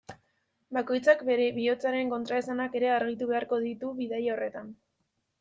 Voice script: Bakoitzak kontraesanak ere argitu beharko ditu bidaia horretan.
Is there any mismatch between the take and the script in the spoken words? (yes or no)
yes